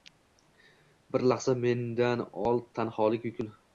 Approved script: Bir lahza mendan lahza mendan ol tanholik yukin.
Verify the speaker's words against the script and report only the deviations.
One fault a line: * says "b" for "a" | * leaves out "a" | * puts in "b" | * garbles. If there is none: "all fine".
* leaves out "lahza mendan"